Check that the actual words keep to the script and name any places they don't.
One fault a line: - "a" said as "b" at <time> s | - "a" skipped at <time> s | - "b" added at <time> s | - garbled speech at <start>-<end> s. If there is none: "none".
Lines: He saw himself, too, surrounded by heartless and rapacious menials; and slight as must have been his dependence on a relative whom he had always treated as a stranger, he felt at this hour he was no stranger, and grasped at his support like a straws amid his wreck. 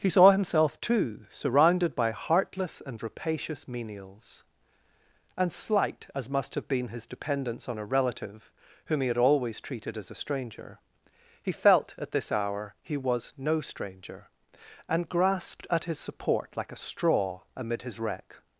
- "straws" said as "straw" at 16.8 s